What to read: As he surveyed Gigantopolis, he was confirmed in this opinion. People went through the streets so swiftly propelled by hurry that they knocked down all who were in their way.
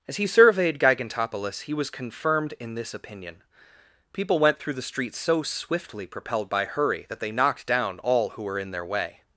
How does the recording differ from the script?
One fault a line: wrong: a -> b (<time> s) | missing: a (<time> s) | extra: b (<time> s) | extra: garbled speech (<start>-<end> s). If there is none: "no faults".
no faults